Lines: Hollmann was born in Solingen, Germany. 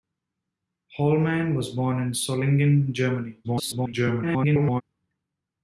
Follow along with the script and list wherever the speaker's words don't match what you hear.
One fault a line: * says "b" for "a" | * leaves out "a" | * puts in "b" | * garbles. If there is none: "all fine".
* garbles